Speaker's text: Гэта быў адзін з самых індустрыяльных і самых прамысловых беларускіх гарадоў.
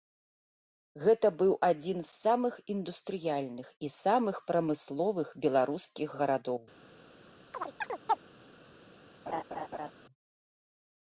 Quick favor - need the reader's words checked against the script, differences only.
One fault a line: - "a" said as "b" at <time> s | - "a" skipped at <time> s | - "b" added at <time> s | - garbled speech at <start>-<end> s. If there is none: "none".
none